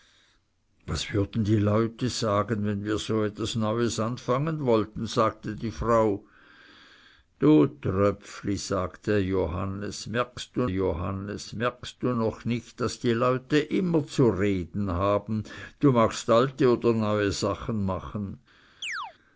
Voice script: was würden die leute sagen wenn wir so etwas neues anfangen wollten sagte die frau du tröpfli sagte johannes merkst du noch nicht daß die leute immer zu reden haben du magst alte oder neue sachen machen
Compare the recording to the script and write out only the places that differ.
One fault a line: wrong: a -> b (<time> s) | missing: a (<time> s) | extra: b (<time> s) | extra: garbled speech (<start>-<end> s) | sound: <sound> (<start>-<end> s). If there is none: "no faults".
extra: johannes merkst du (10.7 s)
sound: chirp (18.8-19.1 s)